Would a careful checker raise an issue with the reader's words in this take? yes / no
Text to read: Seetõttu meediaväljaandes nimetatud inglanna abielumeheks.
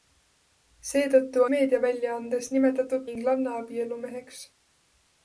no